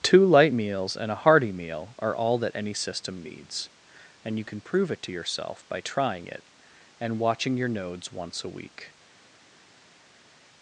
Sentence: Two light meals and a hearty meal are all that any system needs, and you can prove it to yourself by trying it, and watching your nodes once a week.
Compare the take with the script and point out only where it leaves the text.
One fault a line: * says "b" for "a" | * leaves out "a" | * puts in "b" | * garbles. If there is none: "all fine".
all fine